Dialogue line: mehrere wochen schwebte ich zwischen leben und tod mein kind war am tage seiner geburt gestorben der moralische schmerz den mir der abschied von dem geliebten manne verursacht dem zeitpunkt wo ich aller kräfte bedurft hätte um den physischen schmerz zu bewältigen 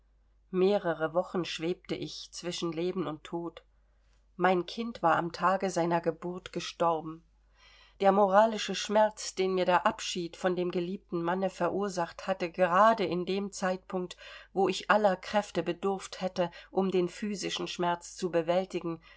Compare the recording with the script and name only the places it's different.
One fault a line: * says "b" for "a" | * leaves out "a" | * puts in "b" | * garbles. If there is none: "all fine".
* puts in "hatte gerade in"